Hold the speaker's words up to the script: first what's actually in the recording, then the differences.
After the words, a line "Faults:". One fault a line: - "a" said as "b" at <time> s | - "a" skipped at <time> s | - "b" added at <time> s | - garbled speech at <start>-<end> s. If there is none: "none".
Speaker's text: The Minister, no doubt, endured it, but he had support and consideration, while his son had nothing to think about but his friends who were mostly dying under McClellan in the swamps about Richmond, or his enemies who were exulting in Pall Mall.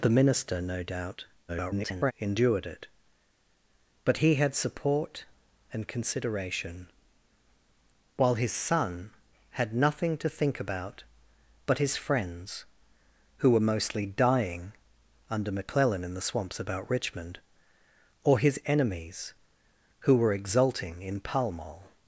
The Minister, no doubt, [garbled] endured it, but he had support and consideration, while his son had nothing to think about but his friends who were mostly dying under McClellan in the swamps about Richmond, or his enemies who were exulting in Pall Mall.
Faults:
- garbled speech at 1.5-2.1 s